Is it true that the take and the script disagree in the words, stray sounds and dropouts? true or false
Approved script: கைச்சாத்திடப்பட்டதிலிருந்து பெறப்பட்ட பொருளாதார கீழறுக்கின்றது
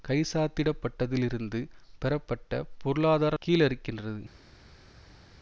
false